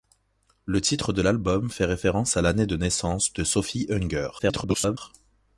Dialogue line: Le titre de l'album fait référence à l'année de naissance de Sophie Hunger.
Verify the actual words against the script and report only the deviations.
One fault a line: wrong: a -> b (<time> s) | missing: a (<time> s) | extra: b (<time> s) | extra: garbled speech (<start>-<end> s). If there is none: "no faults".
extra: garbled speech (4.4-5.0 s)